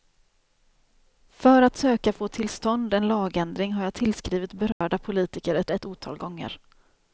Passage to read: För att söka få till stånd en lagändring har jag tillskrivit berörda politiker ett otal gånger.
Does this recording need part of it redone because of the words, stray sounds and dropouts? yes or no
yes